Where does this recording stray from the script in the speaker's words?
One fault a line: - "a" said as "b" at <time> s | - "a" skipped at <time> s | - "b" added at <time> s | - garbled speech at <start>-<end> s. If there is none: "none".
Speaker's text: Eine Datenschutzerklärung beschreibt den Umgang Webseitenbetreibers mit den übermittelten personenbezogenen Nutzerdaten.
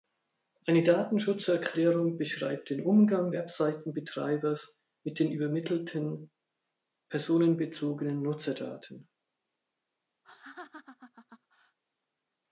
none